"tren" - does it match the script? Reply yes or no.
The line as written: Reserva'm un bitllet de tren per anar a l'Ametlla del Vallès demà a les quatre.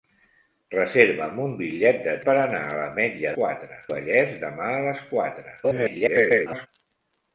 no